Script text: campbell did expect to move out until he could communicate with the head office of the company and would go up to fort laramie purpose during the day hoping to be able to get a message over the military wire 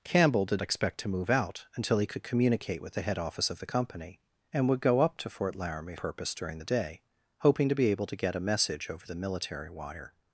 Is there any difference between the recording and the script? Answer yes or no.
no